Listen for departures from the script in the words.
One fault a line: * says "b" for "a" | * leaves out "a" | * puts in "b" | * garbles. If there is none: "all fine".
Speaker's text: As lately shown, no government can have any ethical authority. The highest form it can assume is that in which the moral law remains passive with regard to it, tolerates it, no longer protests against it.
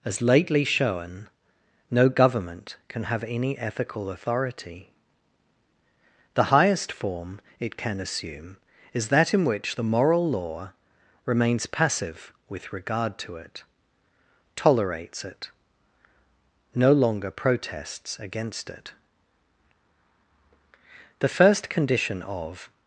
* puts in "The first condition of"